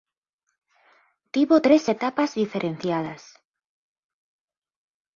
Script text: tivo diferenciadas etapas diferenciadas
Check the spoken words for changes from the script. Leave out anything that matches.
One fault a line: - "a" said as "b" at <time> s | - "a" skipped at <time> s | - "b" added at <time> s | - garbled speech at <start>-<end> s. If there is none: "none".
- "diferenciadas" said as "tres" at 1.6 s